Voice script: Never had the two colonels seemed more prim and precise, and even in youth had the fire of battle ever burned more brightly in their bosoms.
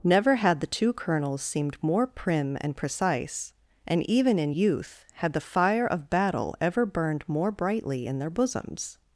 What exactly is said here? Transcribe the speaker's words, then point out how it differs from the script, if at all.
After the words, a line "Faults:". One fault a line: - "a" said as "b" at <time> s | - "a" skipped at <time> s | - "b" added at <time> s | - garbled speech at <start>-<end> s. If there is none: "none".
Never had the two colonels seemed more prim and precise, and even in youth had the fire of battle ever burned more brightly in their bosoms.
Faults:
none